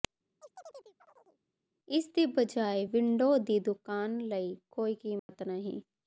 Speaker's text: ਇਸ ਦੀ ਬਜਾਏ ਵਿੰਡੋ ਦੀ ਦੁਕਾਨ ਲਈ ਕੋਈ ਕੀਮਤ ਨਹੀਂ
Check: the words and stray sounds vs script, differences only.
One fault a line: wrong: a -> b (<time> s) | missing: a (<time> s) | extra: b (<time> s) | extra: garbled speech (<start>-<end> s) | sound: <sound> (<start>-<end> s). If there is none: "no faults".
sound: chirp (0.4-1.4 s)
sound: dropout (5.2-5.3 s)